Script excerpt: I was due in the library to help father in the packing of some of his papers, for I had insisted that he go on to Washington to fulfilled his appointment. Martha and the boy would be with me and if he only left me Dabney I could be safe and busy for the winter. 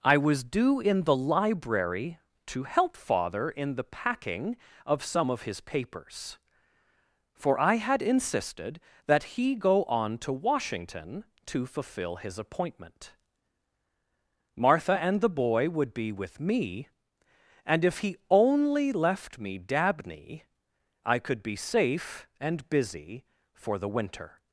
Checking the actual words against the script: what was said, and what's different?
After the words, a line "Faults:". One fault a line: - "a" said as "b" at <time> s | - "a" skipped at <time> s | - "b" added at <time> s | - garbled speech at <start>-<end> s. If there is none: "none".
I was due in the library to help father in the packing of some of his papers, for I had insisted that he go on to Washington to fulfill his appointment. Martha and the boy would be with me and if he only left me Dabney I could be safe and busy for the winter.
Faults:
- "fulfilled" said as "fulfill" at 11.7 s